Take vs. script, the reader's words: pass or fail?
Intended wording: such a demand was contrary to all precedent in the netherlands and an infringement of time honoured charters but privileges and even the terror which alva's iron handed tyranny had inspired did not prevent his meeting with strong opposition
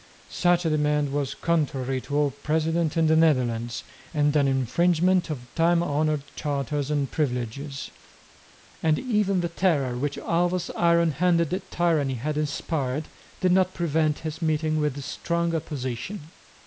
fail